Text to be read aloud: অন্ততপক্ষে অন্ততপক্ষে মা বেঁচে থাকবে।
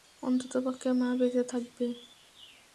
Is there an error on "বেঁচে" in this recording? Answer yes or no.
no